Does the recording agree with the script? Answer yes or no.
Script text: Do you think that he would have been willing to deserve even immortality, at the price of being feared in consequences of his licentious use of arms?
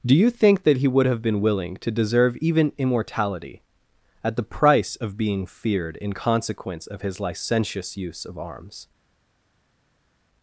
no